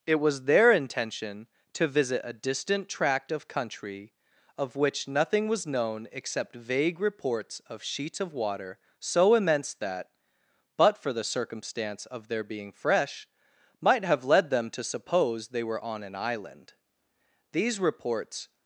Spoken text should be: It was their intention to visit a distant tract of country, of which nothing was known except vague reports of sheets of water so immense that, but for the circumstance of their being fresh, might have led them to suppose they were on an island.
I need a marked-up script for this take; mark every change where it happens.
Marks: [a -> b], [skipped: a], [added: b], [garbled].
It was their intention to visit a distant tract of country, of which nothing was known except vague reports of sheets of water so immense that, but for the circumstance of their being fresh, might have led them to suppose they were on an island. [added: These reports]